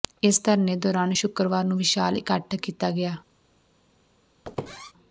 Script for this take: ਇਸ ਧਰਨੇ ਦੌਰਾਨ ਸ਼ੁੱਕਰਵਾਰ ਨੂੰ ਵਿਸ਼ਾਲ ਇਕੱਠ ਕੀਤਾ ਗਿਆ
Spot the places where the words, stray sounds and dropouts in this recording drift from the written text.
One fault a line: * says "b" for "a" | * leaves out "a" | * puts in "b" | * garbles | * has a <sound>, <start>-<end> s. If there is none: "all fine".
* has a squeak, 4.4-4.9 s